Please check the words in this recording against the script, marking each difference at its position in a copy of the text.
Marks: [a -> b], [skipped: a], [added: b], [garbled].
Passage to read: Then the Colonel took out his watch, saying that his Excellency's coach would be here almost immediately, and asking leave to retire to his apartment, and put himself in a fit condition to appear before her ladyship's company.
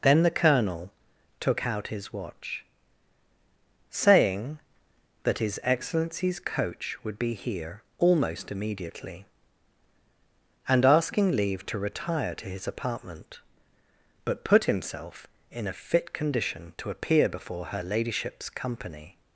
Then the Colonel took out his watch, saying that his Excellency's coach would be here almost immediately, and asking leave to retire to his apartment, [and -> but] put himself in a fit condition to appear before her ladyship's company.